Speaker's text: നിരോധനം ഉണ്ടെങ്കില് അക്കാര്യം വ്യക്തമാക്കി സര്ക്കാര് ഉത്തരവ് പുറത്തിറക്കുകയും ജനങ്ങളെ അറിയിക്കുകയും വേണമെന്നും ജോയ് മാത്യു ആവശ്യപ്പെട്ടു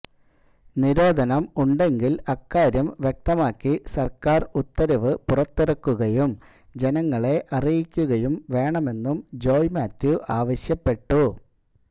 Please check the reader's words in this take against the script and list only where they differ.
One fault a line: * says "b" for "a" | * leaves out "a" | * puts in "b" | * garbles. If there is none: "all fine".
all fine